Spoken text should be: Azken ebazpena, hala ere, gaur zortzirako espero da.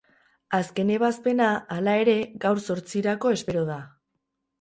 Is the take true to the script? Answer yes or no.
yes